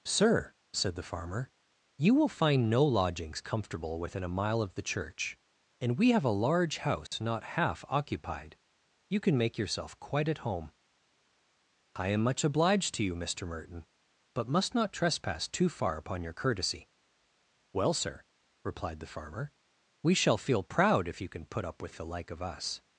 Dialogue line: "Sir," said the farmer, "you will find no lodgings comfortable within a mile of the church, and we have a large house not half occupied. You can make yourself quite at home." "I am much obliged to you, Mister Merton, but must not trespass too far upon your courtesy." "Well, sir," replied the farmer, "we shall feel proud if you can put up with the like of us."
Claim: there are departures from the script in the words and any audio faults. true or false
true